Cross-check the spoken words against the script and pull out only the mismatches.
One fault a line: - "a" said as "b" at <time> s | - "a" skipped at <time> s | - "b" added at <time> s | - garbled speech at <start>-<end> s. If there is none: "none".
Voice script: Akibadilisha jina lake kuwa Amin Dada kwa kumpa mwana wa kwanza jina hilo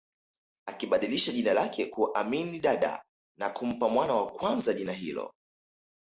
- "kwa" said as "na" at 3.4 s